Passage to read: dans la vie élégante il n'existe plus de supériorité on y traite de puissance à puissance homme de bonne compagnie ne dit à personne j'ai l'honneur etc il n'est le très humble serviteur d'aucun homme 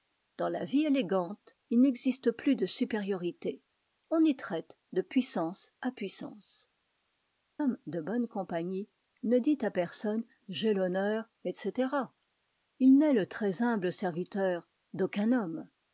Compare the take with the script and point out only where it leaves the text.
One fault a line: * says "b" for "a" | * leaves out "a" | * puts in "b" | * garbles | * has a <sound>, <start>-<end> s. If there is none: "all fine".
all fine